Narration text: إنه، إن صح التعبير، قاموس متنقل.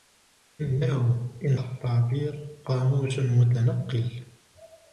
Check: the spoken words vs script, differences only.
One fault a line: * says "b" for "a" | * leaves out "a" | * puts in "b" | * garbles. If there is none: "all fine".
* leaves out "صح"